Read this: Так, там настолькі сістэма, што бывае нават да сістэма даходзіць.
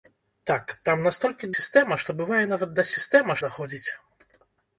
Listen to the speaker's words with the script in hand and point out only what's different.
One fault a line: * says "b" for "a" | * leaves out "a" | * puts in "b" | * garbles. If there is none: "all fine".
all fine